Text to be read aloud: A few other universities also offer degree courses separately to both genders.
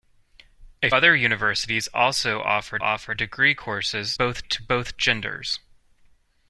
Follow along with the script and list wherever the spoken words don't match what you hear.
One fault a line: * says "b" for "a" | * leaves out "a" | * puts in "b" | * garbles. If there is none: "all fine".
* leaves out "few"
* puts in "offer"
* says "both" for "separately"